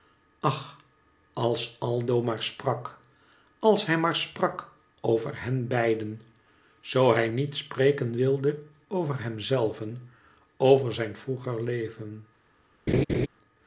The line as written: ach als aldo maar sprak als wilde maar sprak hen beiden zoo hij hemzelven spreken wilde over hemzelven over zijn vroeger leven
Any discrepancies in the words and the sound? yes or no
yes